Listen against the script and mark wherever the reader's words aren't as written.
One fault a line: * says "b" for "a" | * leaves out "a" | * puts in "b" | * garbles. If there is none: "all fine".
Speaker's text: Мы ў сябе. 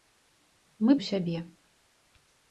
all fine